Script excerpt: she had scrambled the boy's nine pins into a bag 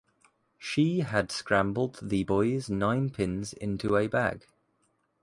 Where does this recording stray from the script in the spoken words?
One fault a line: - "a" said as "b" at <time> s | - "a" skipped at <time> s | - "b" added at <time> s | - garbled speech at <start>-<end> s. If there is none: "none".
none